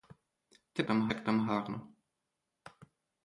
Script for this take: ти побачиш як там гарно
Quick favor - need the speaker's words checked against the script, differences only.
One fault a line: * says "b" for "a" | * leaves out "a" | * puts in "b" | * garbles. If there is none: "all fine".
* says "там" for "побачиш"